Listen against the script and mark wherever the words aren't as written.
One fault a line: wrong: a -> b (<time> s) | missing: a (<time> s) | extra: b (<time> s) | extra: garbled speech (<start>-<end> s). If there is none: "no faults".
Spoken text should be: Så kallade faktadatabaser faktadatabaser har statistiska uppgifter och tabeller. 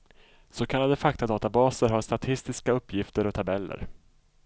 missing: faktadatabaser (1.9 s)